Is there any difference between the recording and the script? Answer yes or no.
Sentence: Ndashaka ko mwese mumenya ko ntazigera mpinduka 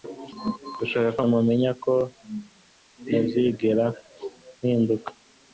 yes